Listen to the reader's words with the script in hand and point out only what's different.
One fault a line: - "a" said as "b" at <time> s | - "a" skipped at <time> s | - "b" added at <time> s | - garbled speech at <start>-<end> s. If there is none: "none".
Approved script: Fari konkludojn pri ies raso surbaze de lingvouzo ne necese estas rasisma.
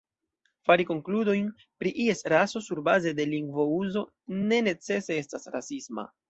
none